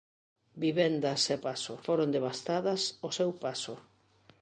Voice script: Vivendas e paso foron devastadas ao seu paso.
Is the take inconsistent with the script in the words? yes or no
no